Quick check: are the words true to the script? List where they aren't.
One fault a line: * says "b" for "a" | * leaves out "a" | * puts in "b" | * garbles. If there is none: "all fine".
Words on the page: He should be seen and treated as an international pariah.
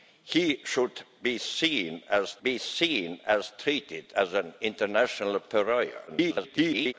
* puts in "be seen and"
* garbles